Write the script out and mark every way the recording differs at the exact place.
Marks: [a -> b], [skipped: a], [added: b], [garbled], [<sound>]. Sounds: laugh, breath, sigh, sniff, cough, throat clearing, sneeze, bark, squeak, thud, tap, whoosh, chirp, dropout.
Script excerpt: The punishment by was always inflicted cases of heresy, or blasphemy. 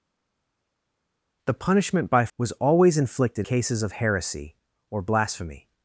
The punishment by was always inflicted cases of heresy, or blasphemy.